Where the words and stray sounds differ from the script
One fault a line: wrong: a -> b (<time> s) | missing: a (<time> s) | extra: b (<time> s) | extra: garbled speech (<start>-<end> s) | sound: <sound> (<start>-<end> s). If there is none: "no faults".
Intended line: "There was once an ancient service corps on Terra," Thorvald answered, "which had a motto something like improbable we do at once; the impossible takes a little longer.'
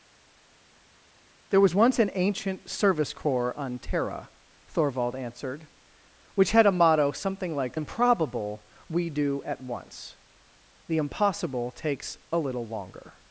no faults